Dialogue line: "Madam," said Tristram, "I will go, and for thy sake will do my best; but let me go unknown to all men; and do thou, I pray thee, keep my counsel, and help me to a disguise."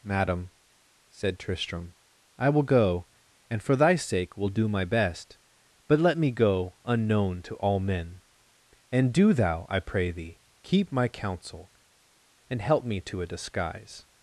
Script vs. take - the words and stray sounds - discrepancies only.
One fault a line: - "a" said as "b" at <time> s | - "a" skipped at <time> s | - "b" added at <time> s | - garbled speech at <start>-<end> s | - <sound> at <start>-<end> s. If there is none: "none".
none